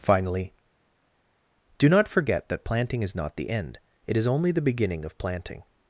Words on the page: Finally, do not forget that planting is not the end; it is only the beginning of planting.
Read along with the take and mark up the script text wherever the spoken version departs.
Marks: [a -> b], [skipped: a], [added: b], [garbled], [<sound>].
Finally, do not forget that planting is not the end; it is only the beginning of planting.